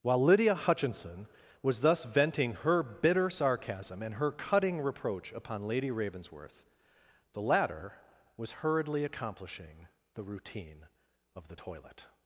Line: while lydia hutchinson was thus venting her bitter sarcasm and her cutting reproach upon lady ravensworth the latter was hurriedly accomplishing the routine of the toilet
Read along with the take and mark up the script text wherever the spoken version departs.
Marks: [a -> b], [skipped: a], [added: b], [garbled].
while lydia hutchinson was thus venting her bitter sarcasm and her cutting reproach upon lady ravensworth the latter was hurriedly accomplishing the routine of the toilet